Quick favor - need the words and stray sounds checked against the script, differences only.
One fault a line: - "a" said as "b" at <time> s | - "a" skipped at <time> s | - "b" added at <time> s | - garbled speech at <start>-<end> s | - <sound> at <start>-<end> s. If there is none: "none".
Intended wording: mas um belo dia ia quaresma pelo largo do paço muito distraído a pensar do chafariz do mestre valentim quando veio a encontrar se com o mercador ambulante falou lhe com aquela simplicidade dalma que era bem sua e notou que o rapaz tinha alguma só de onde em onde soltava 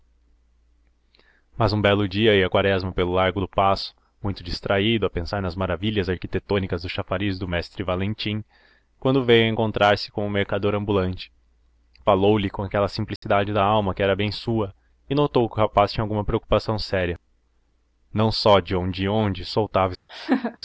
- "nas maravilhas arquitetônicas" added at 5.4 s
- dropout at 13.2-13.2 s
- "preocupação séria não" added at 16.2 s
- laugh at 20.1-20.6 s